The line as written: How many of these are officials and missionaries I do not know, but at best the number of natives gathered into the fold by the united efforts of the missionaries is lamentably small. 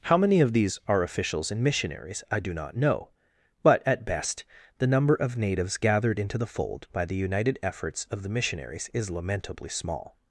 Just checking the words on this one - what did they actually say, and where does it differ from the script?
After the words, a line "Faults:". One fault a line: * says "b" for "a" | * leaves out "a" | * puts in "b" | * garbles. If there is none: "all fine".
How many of these are officials and missionaries I do not know, but at best the number of natives gathered into the fold by the united efforts of the missionaries is lamentably small.
Faults:
all fine